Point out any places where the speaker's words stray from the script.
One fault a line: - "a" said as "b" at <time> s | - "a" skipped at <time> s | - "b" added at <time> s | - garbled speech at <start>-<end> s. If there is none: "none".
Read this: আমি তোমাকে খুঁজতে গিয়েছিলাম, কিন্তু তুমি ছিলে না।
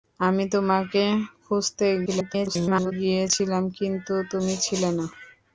- garbled speech at 2.1-2.9 s